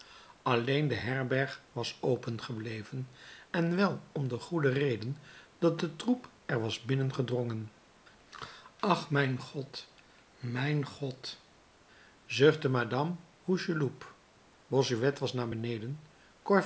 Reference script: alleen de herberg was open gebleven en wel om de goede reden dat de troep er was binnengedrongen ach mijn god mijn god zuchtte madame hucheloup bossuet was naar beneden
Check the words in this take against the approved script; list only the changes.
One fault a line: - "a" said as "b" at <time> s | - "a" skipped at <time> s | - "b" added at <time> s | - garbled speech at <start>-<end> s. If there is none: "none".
none